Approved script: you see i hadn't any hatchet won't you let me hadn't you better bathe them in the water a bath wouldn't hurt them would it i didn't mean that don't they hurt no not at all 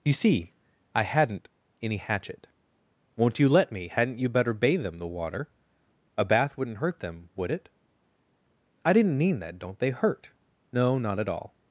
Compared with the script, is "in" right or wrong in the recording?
wrong